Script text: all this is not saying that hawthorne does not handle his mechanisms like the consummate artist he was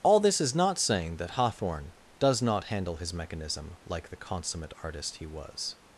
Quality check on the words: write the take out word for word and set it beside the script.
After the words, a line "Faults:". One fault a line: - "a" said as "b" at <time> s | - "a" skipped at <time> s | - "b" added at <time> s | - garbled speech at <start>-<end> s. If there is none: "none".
all this is not saying that hawthorne does not handle his mechanism like the consummate artist he was
Faults:
- "mechanisms" said as "mechanism" at 3.1 s